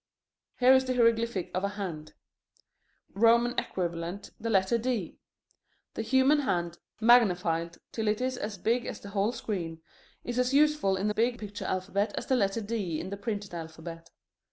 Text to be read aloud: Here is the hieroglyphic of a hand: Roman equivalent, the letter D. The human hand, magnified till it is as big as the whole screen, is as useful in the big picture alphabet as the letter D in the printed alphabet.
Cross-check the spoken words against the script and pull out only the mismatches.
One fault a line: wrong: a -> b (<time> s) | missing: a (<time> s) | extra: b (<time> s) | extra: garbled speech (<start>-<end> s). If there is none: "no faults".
no faults